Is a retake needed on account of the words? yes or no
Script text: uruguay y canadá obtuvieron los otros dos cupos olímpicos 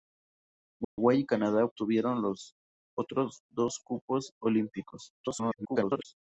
yes